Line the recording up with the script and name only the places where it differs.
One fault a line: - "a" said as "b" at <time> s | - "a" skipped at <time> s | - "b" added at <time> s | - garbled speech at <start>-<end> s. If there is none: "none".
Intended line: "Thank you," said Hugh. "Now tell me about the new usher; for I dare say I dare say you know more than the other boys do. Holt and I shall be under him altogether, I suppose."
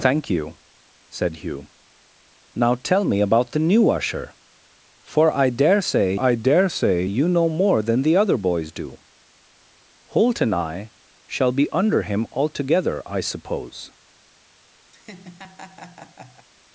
none